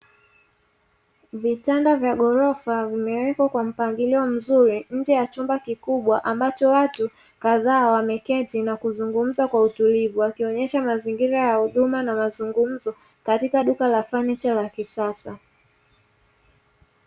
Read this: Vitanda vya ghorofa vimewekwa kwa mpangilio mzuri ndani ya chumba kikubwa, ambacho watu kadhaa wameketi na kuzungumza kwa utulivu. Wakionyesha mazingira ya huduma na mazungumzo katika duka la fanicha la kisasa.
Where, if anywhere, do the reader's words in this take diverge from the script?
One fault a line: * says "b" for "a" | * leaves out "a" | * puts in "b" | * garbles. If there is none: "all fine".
* says "nje" for "ndani"